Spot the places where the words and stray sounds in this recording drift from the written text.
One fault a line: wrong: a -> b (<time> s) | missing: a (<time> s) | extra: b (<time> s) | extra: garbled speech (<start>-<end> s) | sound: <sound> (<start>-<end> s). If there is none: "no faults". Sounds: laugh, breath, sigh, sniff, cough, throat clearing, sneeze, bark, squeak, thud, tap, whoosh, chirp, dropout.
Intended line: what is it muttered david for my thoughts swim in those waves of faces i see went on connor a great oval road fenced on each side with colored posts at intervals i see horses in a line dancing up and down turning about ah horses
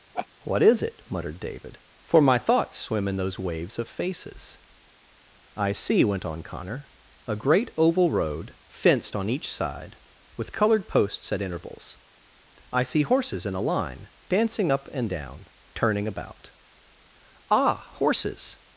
sound: laugh (0.1-0.3 s)